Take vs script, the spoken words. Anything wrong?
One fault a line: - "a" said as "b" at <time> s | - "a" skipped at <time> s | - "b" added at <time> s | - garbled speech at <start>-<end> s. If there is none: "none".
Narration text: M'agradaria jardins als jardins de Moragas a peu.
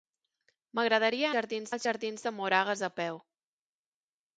none